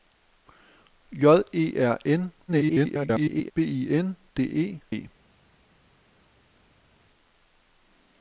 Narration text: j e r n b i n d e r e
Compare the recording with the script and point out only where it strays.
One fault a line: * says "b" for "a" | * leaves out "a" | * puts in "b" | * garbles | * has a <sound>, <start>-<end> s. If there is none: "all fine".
* garbles
* leaves out "r"